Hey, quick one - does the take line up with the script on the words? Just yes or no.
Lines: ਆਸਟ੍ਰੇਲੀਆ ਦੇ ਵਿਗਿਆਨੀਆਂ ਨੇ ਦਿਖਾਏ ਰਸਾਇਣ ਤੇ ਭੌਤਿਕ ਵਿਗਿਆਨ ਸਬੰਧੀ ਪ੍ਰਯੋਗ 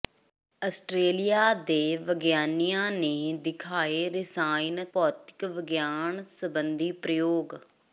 no